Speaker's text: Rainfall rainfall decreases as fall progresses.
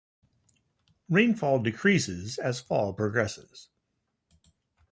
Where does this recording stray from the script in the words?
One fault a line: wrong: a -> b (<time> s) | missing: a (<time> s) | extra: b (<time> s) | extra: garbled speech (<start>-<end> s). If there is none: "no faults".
missing: rainfall (1.6 s)